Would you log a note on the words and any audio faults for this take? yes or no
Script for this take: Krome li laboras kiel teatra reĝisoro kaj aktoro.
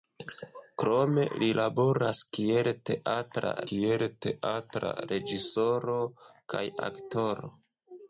yes